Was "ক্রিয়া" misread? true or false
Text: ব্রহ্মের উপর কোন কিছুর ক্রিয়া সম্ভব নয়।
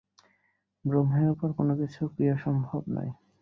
false